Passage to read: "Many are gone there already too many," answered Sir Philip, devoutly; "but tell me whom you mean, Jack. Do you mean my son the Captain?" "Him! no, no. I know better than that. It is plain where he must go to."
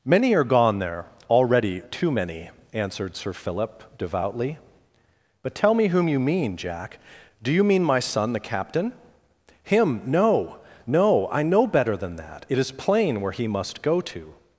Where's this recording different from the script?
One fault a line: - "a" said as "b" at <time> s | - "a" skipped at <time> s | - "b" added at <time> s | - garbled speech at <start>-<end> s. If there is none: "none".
none